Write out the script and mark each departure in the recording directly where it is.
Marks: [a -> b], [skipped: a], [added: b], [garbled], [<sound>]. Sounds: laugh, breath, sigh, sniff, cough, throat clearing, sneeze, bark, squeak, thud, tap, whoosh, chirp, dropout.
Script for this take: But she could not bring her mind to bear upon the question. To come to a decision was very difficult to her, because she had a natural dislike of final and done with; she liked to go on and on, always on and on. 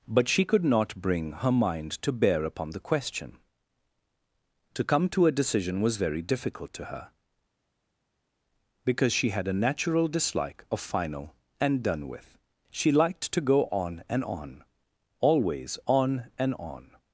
But she could not bring her mind to bear upon the question. To come to a decision was very difficult to her, because she had a natural dislike of final and done with; she liked to go on and on, always on and on.